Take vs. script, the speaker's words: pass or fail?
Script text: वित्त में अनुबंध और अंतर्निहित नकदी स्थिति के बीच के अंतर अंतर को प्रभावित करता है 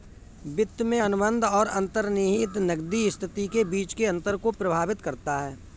fail